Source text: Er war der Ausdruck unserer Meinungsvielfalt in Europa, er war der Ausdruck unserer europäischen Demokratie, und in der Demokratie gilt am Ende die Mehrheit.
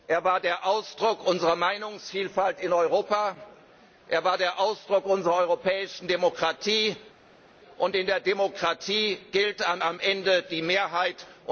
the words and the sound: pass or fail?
fail